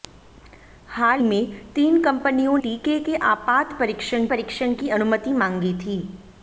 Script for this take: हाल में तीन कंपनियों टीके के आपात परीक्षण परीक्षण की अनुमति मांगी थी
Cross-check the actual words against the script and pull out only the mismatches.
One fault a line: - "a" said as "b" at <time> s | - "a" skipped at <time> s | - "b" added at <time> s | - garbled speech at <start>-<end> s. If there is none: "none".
none